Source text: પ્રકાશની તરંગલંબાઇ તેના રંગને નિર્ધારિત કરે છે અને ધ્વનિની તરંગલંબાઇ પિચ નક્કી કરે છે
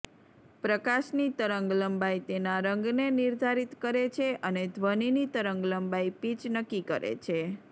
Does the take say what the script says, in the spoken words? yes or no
yes